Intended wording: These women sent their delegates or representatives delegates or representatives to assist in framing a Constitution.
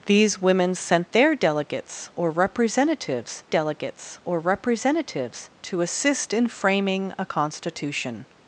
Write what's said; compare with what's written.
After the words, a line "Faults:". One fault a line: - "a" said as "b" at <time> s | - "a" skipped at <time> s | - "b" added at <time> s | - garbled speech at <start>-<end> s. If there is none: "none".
These women sent their delegates or representatives delegates or representatives to assist in framing a Constitution.
Faults:
none